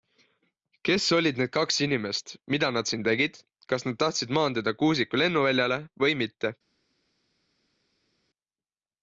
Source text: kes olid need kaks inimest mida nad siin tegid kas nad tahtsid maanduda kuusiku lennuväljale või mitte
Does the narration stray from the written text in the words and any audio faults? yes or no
no